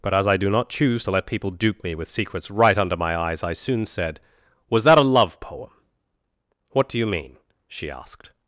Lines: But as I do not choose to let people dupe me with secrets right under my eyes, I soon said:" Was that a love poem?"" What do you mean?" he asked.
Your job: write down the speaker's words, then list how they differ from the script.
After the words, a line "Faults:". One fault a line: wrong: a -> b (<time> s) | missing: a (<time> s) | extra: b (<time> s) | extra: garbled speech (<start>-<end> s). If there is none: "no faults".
But as I do not choose to let people dupe me with secrets right under my eyes, I soon said:" Was that a love poem?"" What do you mean?" she asked.
Faults:
wrong: he -> she (7.7 s)